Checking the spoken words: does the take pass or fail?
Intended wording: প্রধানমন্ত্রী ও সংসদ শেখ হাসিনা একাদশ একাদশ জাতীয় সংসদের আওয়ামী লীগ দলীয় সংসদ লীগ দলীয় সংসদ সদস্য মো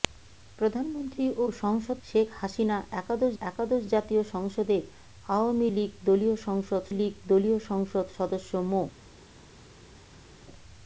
pass